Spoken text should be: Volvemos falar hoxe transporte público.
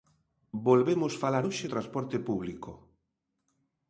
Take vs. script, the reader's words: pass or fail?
pass